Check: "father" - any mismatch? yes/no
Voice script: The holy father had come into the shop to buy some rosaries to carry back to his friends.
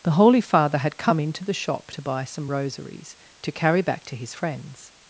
no